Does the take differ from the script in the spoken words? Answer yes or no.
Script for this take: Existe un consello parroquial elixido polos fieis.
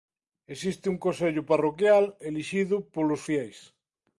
no